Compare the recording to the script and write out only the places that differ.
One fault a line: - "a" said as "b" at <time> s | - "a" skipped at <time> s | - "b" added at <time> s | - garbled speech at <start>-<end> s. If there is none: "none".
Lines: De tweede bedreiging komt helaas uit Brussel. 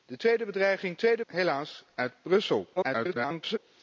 - "komt" said as "tweede" at 1.0 s
- garbled speech at 2.8-3.6 s